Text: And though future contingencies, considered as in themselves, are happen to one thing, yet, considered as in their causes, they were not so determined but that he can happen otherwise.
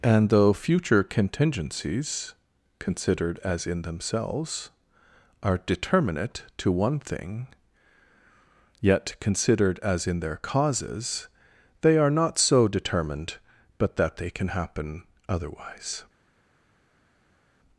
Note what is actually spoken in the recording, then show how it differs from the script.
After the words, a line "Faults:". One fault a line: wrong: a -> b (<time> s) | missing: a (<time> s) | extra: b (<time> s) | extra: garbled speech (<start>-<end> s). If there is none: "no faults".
And though future contingencies, considered as in themselves, are determinate to one thing, yet, considered as in their causes, they are not so determined but that they can happen otherwise.
Faults:
wrong: happen -> determinate (5.6 s)
wrong: were -> are (12.0 s)
wrong: he -> they (14.2 s)